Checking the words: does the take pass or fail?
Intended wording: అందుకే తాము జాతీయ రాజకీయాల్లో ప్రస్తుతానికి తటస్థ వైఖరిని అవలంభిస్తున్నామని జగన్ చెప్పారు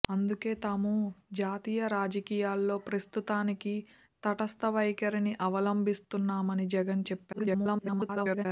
fail